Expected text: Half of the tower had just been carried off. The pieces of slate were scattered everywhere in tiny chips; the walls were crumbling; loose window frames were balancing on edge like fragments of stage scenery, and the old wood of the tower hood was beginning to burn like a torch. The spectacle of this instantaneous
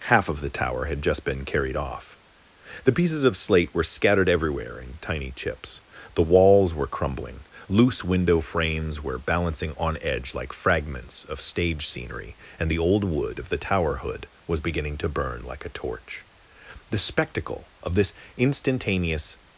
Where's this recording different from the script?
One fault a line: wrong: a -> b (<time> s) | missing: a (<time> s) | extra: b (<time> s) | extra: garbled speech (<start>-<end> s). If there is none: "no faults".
no faults